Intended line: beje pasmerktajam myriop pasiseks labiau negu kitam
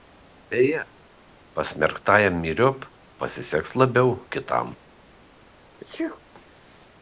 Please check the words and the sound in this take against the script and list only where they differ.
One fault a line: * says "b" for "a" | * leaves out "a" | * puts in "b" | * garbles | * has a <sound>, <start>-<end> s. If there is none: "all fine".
* leaves out "negu"
* has a sneeze, 5.8-6.2 s